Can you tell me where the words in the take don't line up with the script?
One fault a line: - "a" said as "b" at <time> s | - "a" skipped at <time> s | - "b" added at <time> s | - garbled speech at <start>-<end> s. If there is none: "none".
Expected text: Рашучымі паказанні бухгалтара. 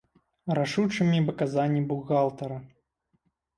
none